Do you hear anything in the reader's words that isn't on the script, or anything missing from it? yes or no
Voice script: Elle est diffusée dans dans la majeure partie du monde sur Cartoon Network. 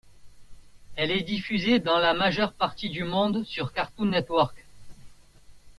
yes